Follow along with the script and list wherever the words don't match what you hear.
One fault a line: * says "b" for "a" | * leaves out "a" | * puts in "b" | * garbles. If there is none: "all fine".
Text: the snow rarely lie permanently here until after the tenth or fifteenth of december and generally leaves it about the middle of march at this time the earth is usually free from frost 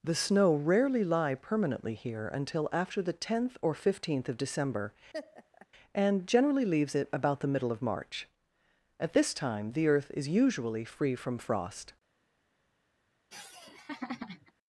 all fine